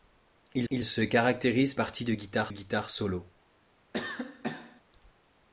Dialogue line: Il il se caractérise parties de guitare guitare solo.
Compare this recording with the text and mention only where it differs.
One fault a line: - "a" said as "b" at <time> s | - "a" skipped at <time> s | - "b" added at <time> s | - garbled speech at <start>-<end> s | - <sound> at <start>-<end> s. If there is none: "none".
- cough at 3.9-4.8 s